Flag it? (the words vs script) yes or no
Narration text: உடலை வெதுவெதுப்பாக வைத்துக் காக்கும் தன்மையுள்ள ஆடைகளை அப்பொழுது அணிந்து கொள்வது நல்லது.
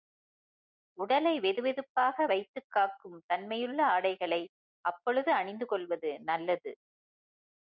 no